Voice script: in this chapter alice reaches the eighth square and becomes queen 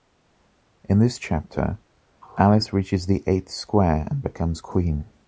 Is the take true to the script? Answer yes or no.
yes